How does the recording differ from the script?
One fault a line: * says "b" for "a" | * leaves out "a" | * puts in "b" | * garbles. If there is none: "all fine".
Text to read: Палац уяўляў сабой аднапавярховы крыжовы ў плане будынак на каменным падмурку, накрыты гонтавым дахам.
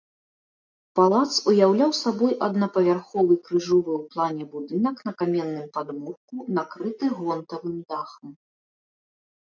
all fine